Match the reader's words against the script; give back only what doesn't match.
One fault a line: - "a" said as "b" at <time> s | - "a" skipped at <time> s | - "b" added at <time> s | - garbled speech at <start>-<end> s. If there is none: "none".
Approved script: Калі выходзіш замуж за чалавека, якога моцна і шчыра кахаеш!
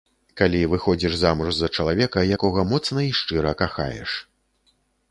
none